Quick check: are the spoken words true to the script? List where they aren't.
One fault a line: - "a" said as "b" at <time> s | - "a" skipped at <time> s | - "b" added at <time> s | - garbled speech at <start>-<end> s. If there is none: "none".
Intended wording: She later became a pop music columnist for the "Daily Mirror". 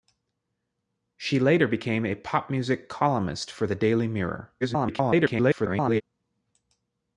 - garbled speech at 4.6-6.0 s